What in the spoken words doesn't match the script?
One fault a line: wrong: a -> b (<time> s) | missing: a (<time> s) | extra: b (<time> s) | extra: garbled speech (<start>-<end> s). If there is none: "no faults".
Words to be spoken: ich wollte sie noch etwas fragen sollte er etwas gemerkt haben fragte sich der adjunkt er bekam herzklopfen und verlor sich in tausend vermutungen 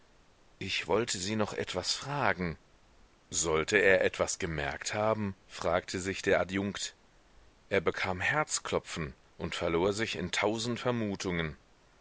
no faults